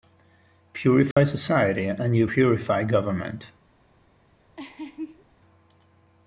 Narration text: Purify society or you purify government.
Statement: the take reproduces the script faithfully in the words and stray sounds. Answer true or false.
false